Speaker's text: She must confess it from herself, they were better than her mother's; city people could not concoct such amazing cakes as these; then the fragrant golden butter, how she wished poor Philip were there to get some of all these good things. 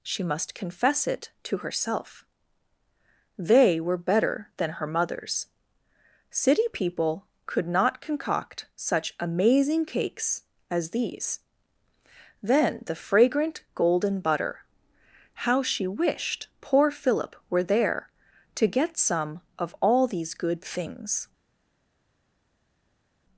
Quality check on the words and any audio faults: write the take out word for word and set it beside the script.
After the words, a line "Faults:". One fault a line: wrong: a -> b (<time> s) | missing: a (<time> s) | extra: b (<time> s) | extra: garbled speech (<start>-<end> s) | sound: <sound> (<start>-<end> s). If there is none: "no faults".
She must confess it to herself, they were better than her mother's; city people could not concoct such amazing cakes as these; then the fragrant golden butter, how she wished poor Philip were there to get some of all these good things.
Faults:
wrong: from -> to (1.4 s)